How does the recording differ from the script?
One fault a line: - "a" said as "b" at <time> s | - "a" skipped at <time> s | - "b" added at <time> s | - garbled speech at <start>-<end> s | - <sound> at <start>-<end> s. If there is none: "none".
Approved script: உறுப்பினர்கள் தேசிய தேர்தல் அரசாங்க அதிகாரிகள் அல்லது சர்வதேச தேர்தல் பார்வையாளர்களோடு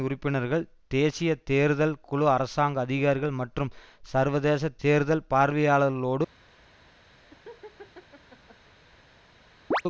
- "குழு" added at 2.0 s
- "அல்லது" said as "மற்றும்" at 3.4 s
- laugh at 7.2-8.7 s
- chirp at 9.7-9.8 s